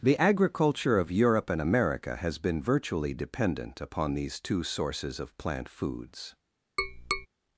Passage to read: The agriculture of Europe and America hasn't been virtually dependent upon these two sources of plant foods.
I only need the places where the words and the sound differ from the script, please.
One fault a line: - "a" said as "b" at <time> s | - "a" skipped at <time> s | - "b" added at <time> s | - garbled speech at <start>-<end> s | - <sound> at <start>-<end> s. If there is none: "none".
- "hasn't" said as "has" at 2.1 s
- tap at 6.8-7.3 s